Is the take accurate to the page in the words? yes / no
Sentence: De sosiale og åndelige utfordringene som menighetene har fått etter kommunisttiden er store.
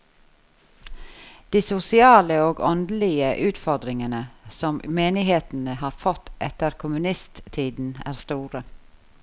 yes